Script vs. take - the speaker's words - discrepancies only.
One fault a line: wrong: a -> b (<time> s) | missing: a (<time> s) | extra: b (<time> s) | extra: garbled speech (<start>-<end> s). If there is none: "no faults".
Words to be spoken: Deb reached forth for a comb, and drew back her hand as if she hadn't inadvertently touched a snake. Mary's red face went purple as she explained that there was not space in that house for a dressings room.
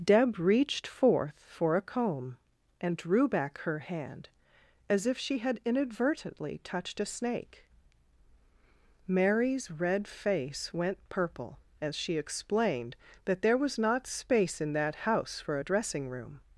wrong: hadn't -> had (5.4 s)
wrong: dressings -> dressing (15.6 s)